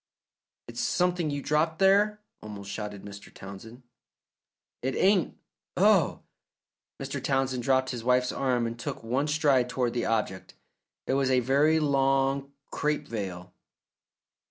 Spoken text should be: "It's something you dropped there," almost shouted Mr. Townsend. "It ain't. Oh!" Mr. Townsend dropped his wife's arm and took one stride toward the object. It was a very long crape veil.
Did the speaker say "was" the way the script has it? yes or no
yes